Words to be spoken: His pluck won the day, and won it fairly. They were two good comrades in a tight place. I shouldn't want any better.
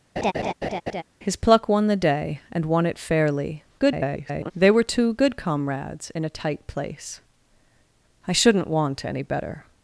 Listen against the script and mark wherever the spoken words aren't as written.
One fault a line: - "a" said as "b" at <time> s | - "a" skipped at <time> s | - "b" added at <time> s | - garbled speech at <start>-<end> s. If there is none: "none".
- garbled speech at 3.8-4.5 s